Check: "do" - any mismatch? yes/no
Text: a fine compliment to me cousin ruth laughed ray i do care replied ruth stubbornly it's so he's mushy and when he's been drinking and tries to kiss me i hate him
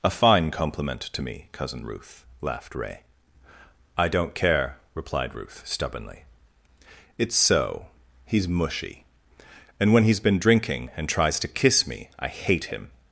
yes